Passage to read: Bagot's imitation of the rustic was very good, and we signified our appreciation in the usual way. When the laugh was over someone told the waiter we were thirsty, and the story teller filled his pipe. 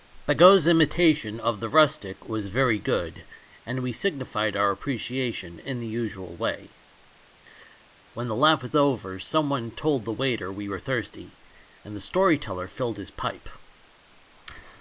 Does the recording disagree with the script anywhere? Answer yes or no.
no